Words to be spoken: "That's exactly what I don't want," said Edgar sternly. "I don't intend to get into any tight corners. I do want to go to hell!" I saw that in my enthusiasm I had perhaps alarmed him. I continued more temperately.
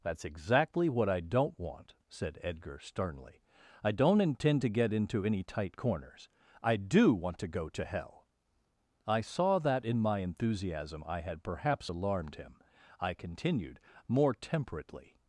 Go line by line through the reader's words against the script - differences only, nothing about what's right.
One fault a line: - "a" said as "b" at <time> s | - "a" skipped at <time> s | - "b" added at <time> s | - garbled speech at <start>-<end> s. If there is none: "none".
none